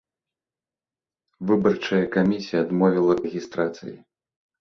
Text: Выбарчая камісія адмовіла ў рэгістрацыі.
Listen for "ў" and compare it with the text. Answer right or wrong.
wrong